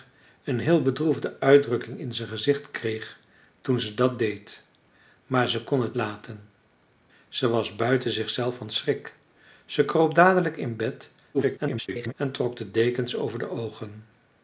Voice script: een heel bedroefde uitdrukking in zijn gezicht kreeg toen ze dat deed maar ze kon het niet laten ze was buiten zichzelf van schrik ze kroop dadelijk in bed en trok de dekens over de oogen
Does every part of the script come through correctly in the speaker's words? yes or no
no